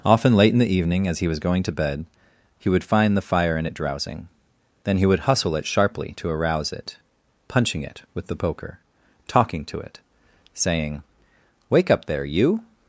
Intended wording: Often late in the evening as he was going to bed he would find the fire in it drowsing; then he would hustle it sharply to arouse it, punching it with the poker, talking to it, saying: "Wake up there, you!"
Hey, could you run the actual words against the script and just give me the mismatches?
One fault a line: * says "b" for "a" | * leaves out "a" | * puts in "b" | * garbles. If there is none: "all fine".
all fine